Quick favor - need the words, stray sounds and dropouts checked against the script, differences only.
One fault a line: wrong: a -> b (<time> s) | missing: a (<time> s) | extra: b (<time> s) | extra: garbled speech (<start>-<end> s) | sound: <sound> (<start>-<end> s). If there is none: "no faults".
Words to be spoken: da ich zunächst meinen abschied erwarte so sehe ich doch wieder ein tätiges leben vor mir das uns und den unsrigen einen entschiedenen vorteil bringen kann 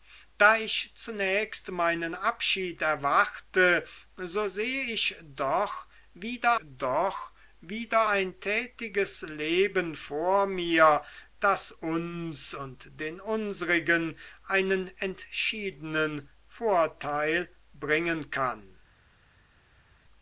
extra: doch wieder (6.6 s)